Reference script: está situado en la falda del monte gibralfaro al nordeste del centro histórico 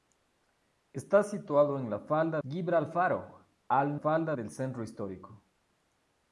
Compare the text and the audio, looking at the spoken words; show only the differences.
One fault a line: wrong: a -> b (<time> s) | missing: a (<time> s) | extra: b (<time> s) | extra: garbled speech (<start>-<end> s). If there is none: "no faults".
missing: del monte (2.4 s)
wrong: nordeste -> falda (3.9 s)